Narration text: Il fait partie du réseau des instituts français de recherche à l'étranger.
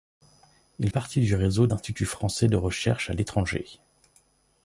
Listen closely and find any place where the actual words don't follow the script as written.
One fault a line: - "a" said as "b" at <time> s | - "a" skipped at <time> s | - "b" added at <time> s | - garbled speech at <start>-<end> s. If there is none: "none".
- "fait" skipped at 0.9 s
- "des" skipped at 1.7 s